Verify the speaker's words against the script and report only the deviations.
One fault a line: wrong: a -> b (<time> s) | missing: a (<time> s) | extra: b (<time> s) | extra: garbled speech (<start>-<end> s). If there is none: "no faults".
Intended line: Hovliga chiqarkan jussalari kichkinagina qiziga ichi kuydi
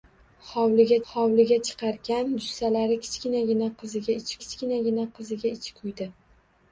extra: hovliga (1.1 s)
extra: kichkinagina qiziga ichi (4.4 s)